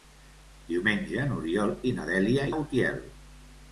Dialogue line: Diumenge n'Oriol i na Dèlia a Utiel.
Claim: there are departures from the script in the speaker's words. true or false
false